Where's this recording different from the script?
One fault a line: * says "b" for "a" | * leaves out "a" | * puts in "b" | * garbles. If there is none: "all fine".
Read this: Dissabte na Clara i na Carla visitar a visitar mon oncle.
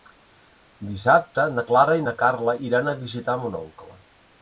* says "iran" for "visitar"